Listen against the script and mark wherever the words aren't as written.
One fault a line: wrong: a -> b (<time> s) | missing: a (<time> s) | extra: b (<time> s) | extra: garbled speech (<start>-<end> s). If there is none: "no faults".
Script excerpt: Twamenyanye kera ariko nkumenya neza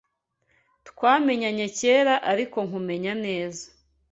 no faults